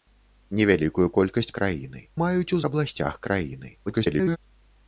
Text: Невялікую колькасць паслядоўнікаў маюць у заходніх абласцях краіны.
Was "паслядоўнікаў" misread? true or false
true